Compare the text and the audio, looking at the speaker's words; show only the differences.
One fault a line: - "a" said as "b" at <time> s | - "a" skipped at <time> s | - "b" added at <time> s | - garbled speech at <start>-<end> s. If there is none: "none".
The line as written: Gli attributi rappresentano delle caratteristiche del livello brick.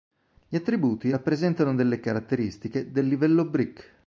none